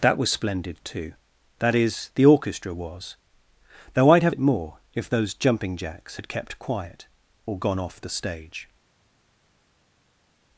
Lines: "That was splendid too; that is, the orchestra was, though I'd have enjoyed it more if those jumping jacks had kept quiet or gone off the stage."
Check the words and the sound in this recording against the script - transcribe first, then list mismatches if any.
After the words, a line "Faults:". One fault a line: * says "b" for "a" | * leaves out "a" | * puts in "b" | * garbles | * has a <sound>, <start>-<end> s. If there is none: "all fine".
"That was splendid too; that is, the orchestra was, though I'd have it more if those jumping jacks had kept quiet or gone off the stage."
Faults:
* leaves out "enjoyed"